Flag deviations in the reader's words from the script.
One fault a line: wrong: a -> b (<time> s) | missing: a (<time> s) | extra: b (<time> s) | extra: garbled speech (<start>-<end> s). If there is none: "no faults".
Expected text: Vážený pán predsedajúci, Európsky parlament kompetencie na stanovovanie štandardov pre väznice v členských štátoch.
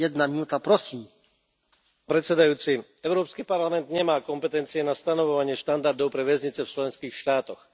extra: nemá (3.9 s)